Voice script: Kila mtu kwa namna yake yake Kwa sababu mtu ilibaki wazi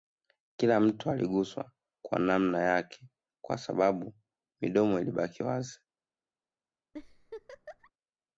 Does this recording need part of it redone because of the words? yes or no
yes